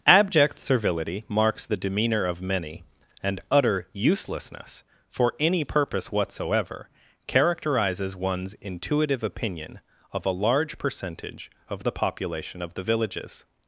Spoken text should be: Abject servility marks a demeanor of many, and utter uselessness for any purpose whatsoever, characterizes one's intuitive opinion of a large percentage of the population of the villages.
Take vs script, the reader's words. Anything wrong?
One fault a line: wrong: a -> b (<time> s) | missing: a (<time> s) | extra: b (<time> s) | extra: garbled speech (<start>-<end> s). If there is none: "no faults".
wrong: a -> the (1.6 s)